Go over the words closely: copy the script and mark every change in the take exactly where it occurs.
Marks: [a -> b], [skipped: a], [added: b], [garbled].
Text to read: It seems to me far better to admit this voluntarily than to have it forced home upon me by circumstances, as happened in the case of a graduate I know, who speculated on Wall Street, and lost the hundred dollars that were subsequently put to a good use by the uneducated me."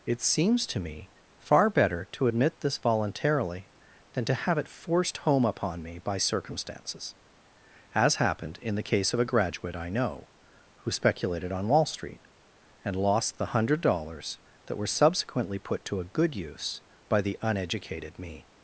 It seems to me far better to admit this voluntarily than to have it forced home upon me by circumstances, as happened in the case of a graduate I know, who speculated on Wall Street, and lost the hundred dollars that were subsequently put to a good use by the uneducated me."